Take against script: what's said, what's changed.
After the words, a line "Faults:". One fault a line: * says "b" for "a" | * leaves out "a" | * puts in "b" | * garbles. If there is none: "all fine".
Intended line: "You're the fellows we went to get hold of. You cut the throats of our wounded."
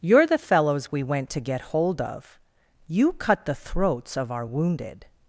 "You're the fellows we went to get hold of. You cut the throats of our wounded."
Faults:
all fine